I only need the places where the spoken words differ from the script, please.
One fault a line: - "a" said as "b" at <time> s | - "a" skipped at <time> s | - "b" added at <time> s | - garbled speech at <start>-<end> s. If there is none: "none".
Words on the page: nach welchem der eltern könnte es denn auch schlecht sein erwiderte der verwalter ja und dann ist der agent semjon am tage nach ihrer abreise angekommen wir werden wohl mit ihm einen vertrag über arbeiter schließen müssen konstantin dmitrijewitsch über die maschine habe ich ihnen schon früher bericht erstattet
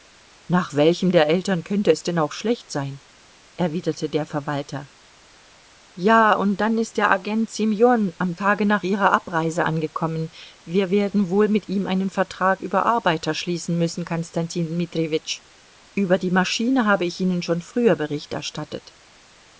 none